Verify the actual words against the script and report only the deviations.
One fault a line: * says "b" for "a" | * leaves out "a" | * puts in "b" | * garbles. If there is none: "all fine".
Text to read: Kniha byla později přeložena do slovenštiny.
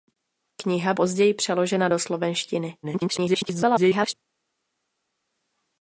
* leaves out "byla"
* garbles